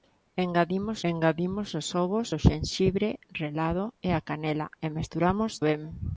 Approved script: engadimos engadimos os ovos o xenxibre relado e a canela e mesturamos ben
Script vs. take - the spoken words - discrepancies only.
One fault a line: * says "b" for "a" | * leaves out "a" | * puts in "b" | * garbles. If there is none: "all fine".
all fine